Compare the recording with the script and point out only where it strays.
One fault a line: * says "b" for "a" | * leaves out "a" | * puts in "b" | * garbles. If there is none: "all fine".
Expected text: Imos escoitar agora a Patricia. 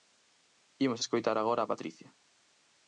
all fine